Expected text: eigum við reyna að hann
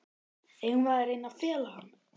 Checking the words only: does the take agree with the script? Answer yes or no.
no